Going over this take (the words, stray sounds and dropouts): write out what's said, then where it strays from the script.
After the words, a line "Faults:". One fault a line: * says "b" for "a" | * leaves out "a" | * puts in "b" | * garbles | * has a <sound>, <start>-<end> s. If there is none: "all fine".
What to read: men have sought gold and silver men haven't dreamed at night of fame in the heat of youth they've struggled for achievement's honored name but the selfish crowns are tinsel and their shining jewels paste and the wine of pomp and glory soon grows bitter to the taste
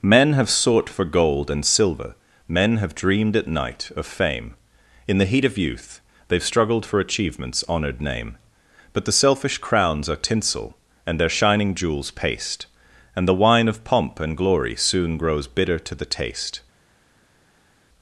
men have sought for gold and silver men have dreamed at night of fame in the heat of youth they've struggled for achievement's honored name but the selfish crowns are tinsel and their shining jewels paste and the wine of pomp and glory soon grows bitter to the taste
Faults:
* puts in "for"
* says "have" for "haven't"